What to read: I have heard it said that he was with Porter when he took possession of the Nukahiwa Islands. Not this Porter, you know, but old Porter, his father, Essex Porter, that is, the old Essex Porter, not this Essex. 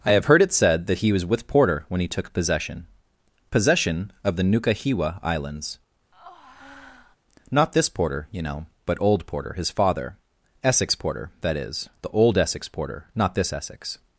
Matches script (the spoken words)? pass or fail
fail